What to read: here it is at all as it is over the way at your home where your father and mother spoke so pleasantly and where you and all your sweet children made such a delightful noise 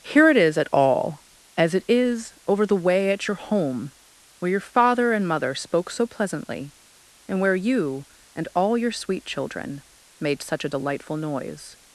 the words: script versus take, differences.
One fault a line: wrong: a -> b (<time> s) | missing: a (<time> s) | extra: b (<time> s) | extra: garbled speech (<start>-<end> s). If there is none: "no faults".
no faults